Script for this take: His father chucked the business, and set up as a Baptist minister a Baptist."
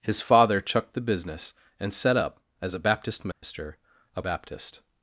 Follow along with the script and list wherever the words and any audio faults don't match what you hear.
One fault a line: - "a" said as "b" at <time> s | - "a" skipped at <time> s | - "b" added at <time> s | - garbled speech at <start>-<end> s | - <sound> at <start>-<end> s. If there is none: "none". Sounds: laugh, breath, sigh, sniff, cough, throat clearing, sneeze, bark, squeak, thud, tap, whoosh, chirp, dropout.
- dropout at 3.3-3.4 s